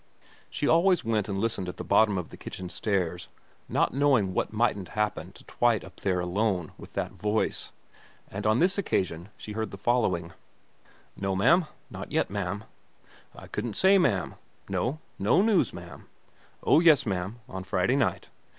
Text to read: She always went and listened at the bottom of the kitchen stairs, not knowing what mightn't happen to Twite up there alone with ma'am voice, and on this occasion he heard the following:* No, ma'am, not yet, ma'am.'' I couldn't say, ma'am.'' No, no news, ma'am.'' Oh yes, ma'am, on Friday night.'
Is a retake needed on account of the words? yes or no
yes